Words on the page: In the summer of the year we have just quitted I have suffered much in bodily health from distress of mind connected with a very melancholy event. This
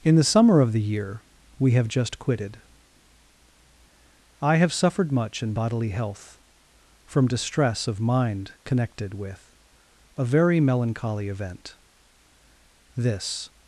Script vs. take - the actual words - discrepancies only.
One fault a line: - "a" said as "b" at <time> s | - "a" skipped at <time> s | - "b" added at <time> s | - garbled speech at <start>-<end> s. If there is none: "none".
none